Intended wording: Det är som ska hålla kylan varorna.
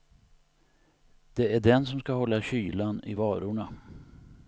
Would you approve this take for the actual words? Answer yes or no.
no